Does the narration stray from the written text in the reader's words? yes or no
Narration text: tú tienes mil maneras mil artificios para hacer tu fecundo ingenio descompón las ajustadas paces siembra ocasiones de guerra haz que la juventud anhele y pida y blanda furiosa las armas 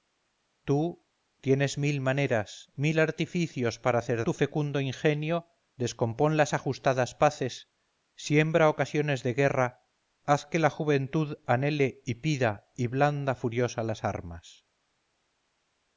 no